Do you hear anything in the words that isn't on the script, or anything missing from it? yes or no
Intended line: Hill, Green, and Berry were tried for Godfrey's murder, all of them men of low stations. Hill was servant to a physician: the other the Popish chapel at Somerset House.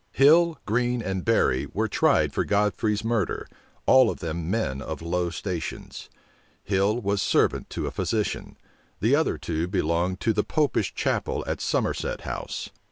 yes